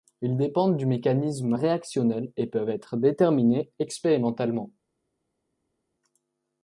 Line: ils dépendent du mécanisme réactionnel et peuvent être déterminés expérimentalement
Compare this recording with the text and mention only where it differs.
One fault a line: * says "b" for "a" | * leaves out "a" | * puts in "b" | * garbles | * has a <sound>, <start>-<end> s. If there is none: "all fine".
all fine